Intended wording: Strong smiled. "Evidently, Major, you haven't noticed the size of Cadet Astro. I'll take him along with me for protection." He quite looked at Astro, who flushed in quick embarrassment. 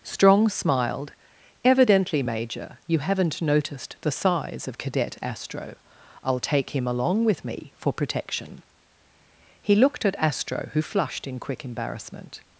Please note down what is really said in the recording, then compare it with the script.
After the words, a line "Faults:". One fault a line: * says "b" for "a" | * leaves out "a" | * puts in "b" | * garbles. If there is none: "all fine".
Strong smiled. "Evidently, Major, you haven't noticed the size of Cadet Astro. I'll take him along with me for protection." He looked at Astro, who flushed in quick embarrassment.
Faults:
* leaves out "quite"